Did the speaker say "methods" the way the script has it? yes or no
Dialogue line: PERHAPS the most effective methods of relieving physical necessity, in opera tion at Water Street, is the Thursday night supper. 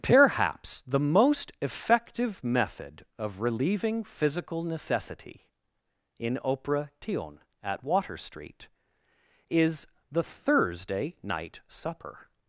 no